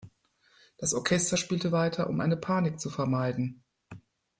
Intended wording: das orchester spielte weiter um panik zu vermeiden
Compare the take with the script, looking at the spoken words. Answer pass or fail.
fail